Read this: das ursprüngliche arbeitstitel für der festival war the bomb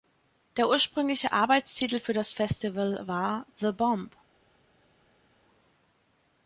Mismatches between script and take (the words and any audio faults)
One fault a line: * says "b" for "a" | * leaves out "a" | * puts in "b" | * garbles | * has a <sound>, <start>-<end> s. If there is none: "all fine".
* says "der" for "das"
* says "das" for "der"